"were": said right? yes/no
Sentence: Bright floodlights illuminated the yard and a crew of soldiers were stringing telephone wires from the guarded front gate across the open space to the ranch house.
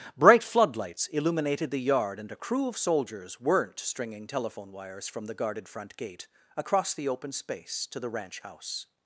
no